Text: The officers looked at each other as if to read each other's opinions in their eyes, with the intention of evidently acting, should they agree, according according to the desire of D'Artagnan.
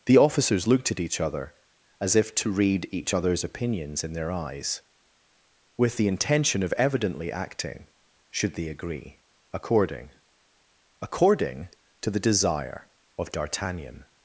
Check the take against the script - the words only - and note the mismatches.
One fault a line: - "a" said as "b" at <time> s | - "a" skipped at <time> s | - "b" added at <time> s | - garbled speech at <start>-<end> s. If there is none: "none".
none